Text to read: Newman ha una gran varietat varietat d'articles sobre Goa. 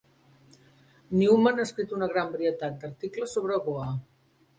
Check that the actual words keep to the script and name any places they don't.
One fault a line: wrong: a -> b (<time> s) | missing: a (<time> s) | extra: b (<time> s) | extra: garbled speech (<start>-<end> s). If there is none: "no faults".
extra: escrit (1.7 s)
missing: varietat (2.8 s)